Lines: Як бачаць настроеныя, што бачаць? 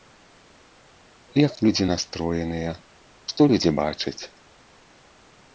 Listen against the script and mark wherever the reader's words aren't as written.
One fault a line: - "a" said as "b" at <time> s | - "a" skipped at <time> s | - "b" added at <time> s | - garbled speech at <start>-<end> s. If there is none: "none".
- "бачаць" said as "людзі" at 1.7 s
- "людзі" added at 3.5 s